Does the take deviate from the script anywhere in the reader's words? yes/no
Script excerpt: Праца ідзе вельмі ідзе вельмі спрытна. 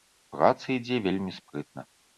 yes